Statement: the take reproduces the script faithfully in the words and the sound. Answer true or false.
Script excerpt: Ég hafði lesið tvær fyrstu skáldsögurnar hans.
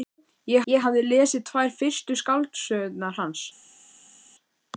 false